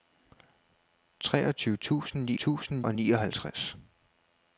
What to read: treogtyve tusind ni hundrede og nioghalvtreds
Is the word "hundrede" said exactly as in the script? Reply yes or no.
no